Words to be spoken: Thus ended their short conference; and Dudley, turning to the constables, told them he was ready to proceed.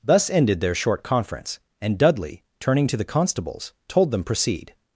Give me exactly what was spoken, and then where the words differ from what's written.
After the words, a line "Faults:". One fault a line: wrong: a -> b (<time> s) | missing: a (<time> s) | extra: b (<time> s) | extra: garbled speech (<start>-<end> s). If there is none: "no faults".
Thus ended their short conference; and Dudley, turning to the constables, told them proceed.
Faults:
missing: he was ready to (4.2 s)